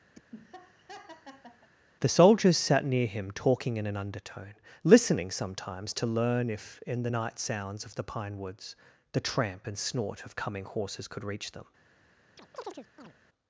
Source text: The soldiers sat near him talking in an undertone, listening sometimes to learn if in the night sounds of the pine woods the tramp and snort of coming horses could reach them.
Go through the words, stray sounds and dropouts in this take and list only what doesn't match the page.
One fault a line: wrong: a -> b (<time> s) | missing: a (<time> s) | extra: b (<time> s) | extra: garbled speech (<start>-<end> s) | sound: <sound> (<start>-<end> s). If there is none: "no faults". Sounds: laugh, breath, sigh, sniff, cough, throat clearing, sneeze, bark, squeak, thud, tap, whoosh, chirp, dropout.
sound: laugh (0.1-1.7 s)
sound: chirp (12.4-13.1 s)